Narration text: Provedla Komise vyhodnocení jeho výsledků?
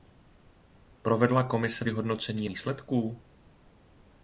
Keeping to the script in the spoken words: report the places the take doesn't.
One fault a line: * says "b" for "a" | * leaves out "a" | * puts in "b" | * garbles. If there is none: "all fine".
* leaves out "jeho"